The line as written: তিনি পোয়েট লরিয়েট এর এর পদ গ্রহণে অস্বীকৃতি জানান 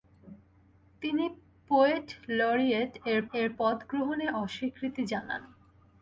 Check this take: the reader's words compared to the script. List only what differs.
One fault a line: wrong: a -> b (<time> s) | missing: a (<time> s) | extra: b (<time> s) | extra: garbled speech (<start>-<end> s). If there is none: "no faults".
no faults